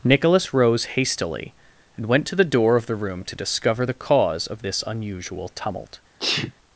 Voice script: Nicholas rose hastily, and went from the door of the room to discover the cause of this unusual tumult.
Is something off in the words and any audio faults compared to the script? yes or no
yes